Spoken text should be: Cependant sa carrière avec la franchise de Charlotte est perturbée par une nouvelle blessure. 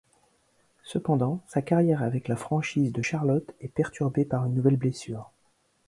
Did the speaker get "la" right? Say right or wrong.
right